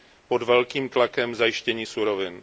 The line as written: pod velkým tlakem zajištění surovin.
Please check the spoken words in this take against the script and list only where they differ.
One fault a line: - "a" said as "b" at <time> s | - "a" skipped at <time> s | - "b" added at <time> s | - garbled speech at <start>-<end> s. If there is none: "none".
none